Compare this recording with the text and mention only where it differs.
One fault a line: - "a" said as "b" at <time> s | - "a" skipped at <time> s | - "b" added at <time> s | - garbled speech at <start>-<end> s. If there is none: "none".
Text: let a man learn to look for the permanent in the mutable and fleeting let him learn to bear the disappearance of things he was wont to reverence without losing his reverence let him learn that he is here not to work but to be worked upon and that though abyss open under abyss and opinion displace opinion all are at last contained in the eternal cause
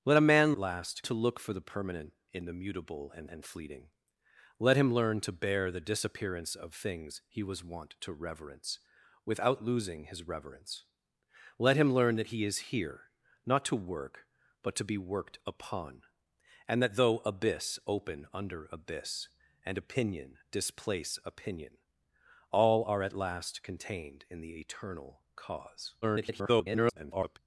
- "learn" said as "last" at 0.5 s
- "and" added at 3.3 s
- garbled speech at 26.0-27.4 s